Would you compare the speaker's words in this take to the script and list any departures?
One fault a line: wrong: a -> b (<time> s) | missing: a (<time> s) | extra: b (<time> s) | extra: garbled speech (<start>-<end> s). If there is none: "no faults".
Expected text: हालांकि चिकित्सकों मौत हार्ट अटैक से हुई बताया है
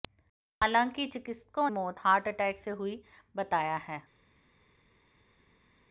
no faults